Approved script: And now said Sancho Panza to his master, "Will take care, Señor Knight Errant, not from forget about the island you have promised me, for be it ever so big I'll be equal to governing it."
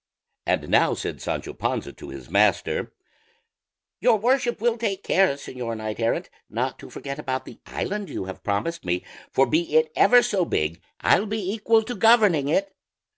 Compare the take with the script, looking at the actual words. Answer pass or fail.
fail